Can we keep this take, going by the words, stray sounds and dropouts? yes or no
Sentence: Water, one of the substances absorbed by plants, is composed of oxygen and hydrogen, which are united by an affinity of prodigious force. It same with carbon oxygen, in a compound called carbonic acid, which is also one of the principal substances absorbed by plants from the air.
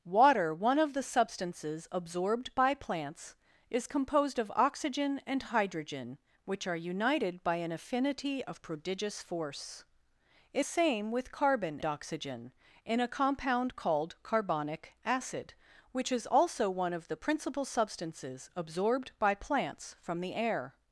yes